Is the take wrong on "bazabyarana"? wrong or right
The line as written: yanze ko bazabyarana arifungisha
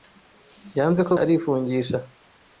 wrong